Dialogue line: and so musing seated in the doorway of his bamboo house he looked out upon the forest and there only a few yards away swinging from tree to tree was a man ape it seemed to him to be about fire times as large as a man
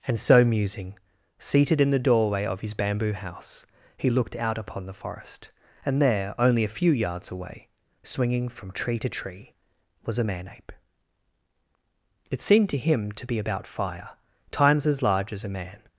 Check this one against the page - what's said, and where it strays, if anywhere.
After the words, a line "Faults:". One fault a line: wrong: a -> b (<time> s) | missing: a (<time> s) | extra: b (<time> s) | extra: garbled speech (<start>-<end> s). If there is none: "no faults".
and so musing seated in the doorway of his bamboo house he looked out upon the forest and there only a few yards away swinging from tree to tree was a man ape it seemed to him to be about fire times as large as a man
Faults:
no faults